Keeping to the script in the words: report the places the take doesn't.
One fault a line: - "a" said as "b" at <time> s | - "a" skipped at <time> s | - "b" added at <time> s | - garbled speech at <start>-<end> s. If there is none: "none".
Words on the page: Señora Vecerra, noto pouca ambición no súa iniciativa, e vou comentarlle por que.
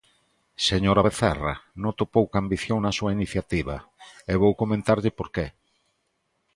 - "no" said as "na" at 2.8 s